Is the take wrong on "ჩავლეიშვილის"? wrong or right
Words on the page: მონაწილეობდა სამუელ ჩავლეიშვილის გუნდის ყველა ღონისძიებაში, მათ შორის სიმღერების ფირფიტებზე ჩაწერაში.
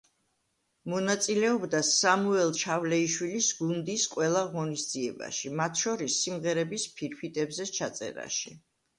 right